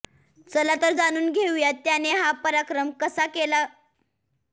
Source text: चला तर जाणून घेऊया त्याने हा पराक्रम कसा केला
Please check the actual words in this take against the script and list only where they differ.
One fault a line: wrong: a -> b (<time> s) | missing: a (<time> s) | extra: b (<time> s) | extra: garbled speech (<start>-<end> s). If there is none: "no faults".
no faults